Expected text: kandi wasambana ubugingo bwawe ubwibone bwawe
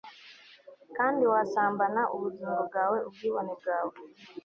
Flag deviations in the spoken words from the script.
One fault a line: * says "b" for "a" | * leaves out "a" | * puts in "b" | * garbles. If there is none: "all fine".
all fine